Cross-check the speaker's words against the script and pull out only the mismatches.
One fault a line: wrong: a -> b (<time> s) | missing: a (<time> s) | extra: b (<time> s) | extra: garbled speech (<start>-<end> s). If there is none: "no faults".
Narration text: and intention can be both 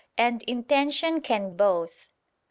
missing: be (1.5 s)